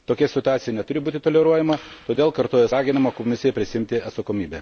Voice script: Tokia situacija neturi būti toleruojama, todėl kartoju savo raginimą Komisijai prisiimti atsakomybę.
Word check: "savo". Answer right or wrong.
wrong